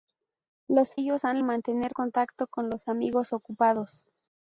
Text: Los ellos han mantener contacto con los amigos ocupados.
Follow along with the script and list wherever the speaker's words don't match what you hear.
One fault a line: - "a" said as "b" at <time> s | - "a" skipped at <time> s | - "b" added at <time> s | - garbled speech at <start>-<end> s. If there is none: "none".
none